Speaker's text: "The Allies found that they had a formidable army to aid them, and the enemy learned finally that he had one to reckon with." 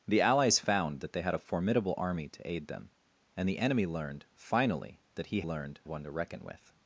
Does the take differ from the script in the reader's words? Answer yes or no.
yes